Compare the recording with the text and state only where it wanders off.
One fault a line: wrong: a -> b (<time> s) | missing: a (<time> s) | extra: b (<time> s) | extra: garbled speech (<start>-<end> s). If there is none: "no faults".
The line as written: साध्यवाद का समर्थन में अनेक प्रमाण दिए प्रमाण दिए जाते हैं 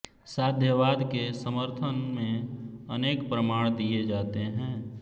wrong: का -> के (1.0 s)
missing: प्रमाण दिए (4.0 s)